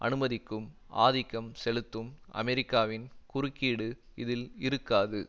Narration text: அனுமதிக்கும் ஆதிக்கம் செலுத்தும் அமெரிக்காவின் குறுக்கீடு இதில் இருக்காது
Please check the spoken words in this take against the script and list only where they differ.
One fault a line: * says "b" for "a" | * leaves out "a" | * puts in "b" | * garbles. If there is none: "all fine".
all fine